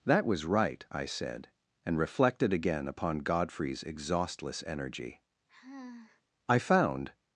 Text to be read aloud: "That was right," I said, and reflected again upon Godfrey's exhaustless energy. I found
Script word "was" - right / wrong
right